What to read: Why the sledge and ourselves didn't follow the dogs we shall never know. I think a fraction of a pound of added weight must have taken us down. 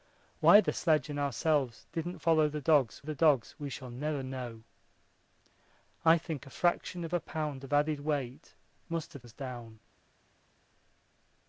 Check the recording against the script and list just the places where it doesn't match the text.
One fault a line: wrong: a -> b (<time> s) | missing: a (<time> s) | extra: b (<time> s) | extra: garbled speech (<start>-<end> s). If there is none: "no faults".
extra: the dogs (3.0 s)
missing: taken (9.2 s)